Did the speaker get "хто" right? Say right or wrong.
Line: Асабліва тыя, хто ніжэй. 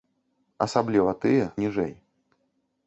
wrong